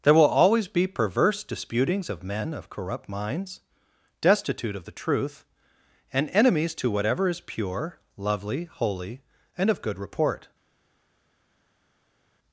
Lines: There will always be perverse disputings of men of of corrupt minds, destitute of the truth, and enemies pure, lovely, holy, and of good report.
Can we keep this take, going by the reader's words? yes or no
no